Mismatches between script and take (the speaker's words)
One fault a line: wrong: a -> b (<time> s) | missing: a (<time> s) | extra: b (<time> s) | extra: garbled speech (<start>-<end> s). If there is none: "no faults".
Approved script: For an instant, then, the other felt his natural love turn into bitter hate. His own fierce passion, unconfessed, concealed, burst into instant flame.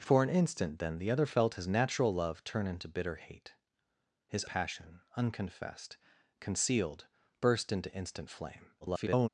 missing: own fierce (4.5 s)
extra: garbled speech (8.8-9.3 s)